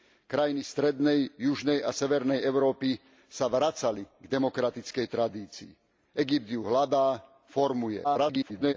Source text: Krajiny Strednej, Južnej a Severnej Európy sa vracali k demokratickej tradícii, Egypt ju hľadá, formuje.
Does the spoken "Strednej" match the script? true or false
true